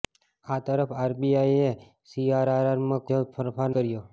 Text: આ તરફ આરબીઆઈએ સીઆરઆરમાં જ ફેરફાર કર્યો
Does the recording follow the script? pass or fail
pass